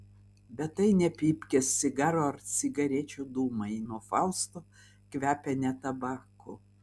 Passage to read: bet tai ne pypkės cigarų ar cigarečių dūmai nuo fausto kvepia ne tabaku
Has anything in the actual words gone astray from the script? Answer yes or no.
no